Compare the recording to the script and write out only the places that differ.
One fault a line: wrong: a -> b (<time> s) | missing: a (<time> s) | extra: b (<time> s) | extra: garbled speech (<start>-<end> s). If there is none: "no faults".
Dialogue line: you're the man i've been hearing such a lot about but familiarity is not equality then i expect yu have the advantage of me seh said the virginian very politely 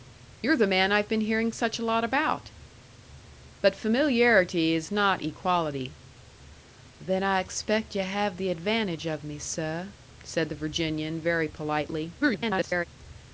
extra: garbled speech (12.2-12.8 s)